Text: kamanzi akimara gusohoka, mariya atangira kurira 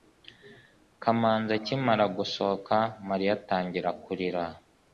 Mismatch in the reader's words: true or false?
false